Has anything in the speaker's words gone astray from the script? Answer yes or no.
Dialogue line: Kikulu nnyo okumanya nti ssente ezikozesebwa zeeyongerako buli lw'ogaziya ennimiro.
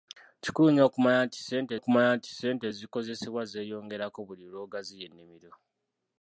yes